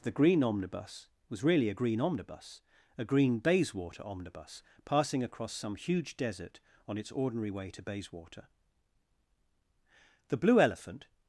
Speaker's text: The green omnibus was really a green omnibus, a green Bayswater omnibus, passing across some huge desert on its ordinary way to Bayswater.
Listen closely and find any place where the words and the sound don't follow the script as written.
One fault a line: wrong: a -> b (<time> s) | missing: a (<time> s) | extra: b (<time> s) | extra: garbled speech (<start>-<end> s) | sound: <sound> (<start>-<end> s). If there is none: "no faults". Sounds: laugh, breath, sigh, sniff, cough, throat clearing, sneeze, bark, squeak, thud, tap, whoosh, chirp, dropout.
extra: The blue elephant (10.3 s)